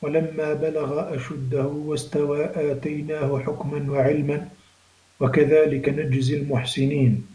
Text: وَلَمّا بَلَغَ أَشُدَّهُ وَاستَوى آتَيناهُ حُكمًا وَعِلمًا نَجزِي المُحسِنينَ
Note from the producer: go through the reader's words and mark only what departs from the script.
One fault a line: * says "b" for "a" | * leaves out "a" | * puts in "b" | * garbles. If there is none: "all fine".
* puts in "وَكَذلِكَ"